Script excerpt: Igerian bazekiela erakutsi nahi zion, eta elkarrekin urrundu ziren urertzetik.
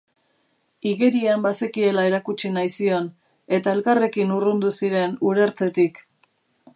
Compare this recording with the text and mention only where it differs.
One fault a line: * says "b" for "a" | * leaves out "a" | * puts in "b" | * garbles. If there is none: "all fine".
all fine